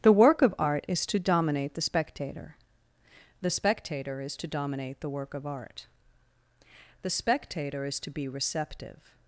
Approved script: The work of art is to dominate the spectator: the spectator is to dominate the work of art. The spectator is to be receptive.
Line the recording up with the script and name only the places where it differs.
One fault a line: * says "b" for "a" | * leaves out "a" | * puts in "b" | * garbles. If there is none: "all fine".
all fine